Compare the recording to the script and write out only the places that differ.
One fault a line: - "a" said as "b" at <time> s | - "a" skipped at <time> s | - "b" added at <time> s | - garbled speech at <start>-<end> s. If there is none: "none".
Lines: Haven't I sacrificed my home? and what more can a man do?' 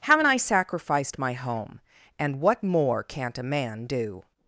- "can" said as "can't" at 3.0 s